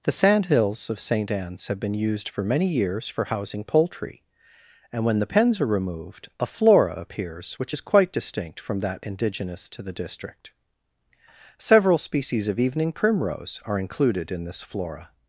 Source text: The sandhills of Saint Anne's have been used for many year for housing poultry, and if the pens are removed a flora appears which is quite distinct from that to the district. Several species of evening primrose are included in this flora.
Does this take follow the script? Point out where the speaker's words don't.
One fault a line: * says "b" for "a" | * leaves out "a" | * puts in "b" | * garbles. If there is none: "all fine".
* says "years" for "year"
* says "when" for "if"
* puts in "indigenous"